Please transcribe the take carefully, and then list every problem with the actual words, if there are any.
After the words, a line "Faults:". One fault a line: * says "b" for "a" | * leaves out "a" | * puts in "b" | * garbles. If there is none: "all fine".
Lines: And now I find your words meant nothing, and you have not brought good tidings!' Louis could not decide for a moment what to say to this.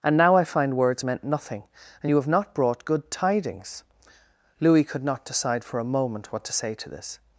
And now I find words meant nothing, and you have not brought good tidings!' Louis could not decide for a moment what to say to this.
Faults:
* leaves out "your"